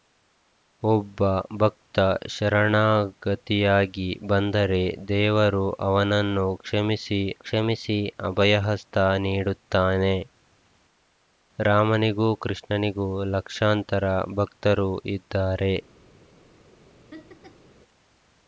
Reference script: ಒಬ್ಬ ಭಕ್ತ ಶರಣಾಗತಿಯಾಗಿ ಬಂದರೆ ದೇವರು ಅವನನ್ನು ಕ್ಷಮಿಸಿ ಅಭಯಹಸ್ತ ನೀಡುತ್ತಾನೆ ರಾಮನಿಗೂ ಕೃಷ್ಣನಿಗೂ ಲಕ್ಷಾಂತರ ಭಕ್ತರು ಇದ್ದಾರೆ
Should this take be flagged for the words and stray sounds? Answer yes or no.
yes